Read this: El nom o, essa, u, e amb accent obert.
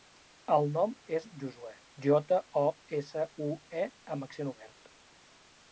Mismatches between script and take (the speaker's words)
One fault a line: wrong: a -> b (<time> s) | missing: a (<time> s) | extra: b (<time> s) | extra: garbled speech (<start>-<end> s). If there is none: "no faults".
extra: és Josuè jota (1.2 s)